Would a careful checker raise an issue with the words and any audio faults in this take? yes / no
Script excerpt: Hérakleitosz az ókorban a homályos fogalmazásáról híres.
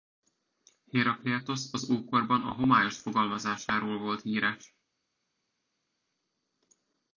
yes